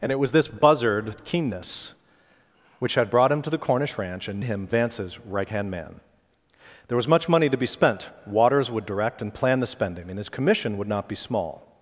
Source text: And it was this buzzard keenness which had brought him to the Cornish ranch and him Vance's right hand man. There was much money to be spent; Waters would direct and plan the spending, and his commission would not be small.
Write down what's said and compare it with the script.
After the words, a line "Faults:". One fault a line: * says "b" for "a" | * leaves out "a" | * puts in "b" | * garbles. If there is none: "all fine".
And it was this buzzard keenness which had brought him to the Cornish ranch and him Vance's right hand man. There was much money to be spent; Waters would direct and plan the spending, and his commission would not be small.
Faults:
all fine